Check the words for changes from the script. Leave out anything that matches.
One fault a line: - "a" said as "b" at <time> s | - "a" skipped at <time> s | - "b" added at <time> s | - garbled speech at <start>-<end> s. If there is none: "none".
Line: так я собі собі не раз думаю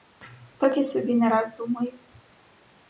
- "собі" skipped at 1.1 s